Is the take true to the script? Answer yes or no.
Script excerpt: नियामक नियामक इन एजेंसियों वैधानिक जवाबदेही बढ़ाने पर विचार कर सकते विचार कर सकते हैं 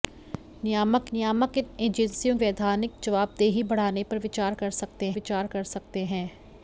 yes